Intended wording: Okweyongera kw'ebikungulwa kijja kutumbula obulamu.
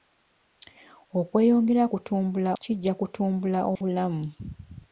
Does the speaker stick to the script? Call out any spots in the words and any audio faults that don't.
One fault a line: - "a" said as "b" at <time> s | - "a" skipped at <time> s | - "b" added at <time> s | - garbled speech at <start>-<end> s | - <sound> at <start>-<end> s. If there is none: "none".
- "kw'ebikungulwa" said as "kutumbula" at 1.9 s
- dropout at 3.8-3.8 s